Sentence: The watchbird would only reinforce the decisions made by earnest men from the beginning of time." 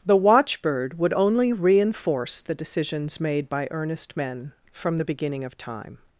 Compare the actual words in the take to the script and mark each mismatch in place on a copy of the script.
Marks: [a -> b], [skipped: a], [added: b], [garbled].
The watchbird would only reinforce the decisions made by earnest men from the beginning of time."